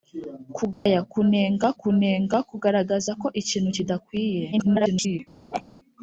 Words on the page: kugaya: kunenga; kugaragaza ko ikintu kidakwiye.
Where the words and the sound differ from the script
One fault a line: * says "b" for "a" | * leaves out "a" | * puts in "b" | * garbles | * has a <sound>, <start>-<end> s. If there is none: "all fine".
* has a dropout, 0.7-0.9 s
* puts in "kunenga"
* garbles
* has a laugh, 5.5-5.6 s